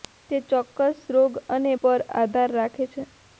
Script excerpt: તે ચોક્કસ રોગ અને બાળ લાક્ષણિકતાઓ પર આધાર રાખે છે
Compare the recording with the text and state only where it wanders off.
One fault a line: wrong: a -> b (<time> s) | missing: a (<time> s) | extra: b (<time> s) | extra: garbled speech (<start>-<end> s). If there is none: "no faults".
missing: બાળ લાક્ષણિકતાઓ (1.7 s)